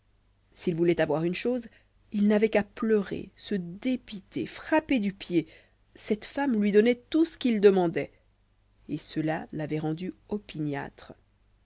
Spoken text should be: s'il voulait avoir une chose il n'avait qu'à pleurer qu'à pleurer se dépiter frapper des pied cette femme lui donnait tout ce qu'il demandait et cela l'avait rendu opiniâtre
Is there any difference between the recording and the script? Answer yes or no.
yes